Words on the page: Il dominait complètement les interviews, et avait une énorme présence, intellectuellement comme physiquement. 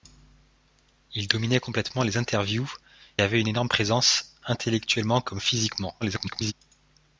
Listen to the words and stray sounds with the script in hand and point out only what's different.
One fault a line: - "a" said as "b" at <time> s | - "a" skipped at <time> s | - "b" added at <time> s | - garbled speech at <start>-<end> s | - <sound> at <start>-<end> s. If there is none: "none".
- "et" skipped at 2.7 s
- garbled speech at 6.0-6.5 s